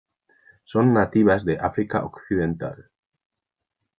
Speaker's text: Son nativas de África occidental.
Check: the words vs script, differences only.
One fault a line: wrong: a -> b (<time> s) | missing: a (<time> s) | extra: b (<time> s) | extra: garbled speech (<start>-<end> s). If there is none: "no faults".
no faults